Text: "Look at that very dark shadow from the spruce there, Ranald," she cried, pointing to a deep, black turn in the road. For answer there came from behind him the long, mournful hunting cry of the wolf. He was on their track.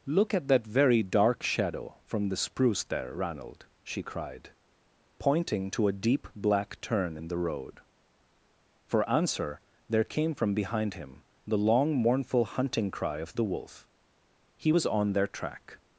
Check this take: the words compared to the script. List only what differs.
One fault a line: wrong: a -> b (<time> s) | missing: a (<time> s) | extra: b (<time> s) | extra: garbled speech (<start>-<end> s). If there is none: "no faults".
no faults